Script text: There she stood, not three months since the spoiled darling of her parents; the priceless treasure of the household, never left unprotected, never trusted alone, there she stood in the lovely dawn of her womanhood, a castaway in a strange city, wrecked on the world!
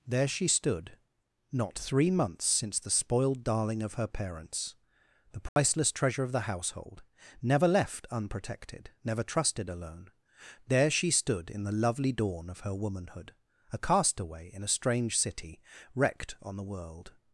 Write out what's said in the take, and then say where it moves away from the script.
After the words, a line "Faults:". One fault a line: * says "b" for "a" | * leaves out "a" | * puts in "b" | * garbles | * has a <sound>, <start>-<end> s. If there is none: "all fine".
There she stood, not three months since the spoiled darling of her parents; the priceless treasure of the household, never left unprotected, never trusted alone, there she stood in the lovely dawn of her womanhood, a castaway in a strange city, wrecked on the world!
Faults:
* has a dropout, 5.5-5.6 s